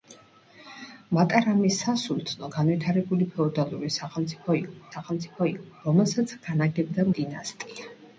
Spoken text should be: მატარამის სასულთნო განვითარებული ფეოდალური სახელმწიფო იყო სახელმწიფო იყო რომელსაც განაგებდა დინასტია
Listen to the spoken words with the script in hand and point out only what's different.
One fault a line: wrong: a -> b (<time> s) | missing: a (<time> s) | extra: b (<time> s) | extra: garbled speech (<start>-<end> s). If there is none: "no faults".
no faults